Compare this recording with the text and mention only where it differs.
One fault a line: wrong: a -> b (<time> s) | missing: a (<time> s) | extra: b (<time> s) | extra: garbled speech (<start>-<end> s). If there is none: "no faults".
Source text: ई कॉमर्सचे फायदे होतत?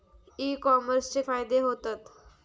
no faults